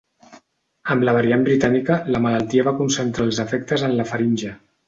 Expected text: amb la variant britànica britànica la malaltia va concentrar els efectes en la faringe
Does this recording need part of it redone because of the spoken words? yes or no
yes